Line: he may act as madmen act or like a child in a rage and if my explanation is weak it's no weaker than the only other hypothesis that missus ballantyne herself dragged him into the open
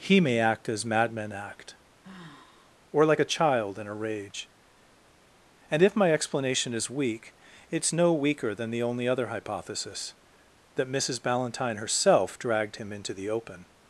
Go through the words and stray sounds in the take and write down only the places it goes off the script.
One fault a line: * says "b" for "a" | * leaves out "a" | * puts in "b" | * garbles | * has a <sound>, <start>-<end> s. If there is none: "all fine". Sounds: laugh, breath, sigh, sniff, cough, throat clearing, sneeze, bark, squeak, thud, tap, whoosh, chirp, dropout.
* has a sigh, 2.0-2.8 s